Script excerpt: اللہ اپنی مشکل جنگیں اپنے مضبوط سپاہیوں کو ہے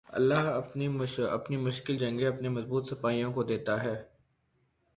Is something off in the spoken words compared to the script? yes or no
yes